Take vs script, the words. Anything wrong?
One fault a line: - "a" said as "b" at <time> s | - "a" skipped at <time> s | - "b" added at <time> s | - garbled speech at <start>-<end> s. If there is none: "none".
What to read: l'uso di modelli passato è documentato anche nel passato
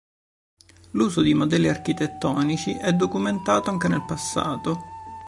- "passato" said as "architettonici" at 1.7 s